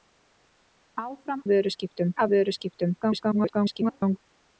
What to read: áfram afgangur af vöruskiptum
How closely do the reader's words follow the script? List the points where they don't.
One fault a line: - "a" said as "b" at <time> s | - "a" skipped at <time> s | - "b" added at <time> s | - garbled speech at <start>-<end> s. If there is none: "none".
- "afgangur" said as "vöruskiptum" at 1.5 s
- garbled speech at 3.0-4.2 s